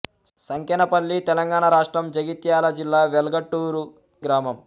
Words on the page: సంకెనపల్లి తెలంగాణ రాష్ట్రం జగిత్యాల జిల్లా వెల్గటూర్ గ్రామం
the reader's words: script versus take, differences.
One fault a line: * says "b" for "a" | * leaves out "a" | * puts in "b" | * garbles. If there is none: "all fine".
all fine